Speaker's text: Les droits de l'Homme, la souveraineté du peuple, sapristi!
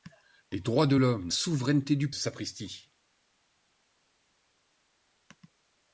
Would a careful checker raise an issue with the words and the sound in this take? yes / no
yes